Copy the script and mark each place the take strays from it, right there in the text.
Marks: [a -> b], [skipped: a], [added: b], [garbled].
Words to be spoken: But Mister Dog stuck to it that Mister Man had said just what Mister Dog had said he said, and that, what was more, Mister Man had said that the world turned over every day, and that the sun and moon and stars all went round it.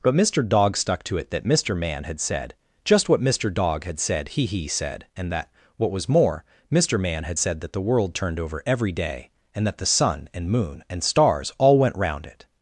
But Mister Dog stuck to it that Mister Man had said just what Mister Dog had said he [added: he] said, and that, what was more, Mister Man had said that the world turned over every day, and that the sun and moon and stars all went round it.